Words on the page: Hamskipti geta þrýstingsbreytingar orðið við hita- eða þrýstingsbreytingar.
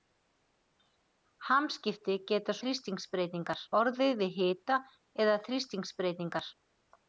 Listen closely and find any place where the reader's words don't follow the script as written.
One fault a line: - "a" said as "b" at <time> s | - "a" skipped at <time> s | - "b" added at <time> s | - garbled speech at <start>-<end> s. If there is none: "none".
none